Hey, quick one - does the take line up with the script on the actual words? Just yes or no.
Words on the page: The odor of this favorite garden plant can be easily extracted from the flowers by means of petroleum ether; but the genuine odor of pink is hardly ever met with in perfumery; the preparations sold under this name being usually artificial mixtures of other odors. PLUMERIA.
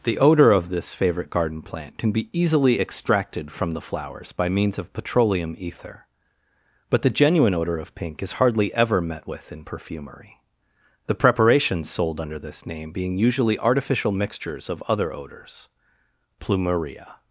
yes